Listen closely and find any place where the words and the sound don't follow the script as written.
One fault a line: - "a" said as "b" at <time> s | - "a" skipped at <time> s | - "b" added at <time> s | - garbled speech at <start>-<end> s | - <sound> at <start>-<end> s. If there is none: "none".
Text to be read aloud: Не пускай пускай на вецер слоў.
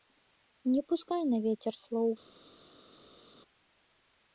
- "пускай" skipped at 1.2 s